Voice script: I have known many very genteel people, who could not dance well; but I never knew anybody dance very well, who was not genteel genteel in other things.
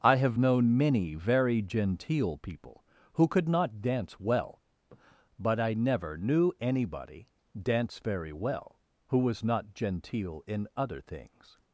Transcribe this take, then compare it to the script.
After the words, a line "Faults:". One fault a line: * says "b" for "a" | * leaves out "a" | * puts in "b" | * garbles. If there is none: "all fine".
I have known many very genteel people, who could not dance well; but I never knew anybody dance very well, who was not genteel in other things.
Faults:
* leaves out "genteel"